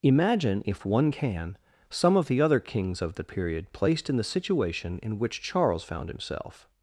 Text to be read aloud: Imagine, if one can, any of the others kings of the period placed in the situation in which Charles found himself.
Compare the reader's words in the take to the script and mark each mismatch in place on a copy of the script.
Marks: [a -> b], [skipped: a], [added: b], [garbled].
Imagine, if one can, [any -> some] of the [others -> other] kings of the period placed in the situation in which Charles found himself.